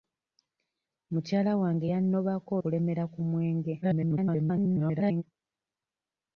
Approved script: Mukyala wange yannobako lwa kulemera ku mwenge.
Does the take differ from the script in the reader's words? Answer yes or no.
yes